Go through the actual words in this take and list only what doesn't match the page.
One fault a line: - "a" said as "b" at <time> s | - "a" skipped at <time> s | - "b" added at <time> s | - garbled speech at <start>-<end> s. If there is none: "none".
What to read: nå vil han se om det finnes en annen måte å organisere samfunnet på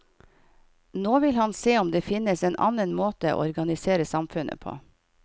none